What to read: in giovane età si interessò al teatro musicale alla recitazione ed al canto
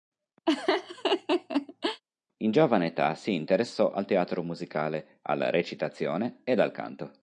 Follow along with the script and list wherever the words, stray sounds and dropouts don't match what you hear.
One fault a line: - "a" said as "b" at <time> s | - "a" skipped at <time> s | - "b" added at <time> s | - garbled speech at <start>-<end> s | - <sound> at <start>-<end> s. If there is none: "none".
- laugh at 0.5-2.0 s